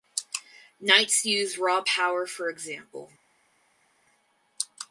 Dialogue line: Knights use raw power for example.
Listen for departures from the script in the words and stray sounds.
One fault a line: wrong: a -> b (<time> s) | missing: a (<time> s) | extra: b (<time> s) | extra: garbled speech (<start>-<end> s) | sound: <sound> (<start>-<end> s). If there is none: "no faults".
no faults